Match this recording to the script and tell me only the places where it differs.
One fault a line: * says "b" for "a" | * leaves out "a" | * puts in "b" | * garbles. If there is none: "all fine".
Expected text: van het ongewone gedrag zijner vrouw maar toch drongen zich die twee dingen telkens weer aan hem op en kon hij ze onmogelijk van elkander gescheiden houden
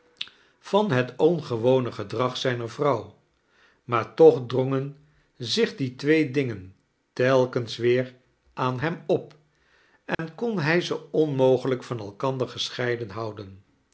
all fine